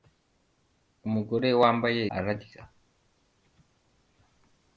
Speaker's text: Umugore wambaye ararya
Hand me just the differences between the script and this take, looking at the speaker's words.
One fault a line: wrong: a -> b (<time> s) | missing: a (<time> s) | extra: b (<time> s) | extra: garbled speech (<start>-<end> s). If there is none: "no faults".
no faults